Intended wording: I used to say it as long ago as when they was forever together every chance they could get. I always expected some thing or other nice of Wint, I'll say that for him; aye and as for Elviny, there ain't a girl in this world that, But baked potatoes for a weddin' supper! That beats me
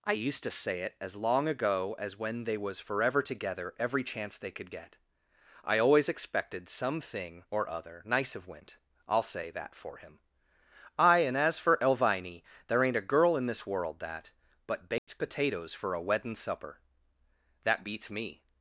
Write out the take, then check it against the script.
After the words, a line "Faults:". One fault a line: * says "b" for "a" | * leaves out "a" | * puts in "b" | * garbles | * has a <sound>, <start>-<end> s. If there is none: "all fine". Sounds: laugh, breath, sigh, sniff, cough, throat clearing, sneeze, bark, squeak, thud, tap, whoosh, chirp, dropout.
I used to say it as long ago as when they was forever together every chance they could get. I always expected some thing or other nice of Wint, I'll say that for him; aye and as for Elviny, there ain't a girl in this world that, But baked potatoes for a weddin' supper! That beats me
Faults:
* has a dropout, 15.0-15.1 s